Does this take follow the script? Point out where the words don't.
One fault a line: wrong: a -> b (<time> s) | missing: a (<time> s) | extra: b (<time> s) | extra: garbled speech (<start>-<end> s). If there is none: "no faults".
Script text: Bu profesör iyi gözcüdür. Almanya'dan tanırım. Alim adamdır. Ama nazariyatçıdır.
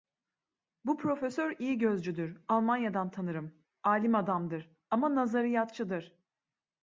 no faults